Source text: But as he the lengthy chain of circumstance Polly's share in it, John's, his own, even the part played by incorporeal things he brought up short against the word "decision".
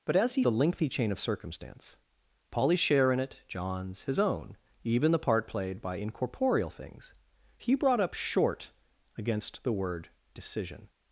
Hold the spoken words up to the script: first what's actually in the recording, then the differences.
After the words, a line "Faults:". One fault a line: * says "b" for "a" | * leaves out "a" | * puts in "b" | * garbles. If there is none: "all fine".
But as he the lengthy chain of circumstance Polly's share in it, John's, his own, even the part played by incorporeal things he brought up short against the word "decision".
Faults:
all fine